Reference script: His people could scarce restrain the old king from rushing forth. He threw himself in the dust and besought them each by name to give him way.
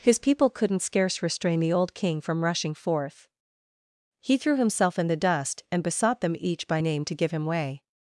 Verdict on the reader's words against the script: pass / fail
fail